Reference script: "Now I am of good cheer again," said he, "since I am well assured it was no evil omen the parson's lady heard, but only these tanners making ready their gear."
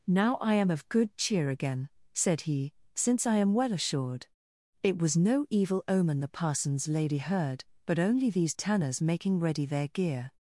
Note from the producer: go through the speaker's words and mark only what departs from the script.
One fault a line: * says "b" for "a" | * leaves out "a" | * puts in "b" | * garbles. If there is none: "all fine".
all fine